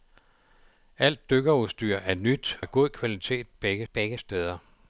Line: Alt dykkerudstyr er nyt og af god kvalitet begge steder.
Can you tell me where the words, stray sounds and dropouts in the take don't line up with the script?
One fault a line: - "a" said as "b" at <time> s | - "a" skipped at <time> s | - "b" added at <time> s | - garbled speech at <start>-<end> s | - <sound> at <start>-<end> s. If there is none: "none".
- "og" skipped at 2.6 s
- "begge" added at 3.9 s